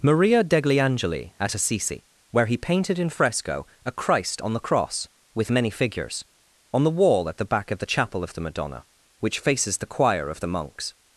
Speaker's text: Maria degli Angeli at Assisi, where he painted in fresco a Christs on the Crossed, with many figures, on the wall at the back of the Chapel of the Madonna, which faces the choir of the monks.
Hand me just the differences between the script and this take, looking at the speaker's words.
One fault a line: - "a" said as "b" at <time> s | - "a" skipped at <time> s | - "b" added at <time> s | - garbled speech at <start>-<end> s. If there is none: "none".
- "Christs" said as "Christ" at 3.9 s
- "Crossed" said as "Cross" at 4.6 s